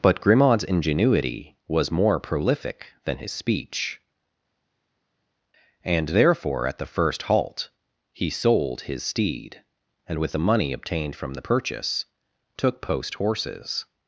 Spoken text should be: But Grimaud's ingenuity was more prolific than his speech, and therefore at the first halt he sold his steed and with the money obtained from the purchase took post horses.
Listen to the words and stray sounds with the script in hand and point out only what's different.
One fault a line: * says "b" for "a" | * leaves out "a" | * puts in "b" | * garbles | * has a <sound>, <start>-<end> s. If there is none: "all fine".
all fine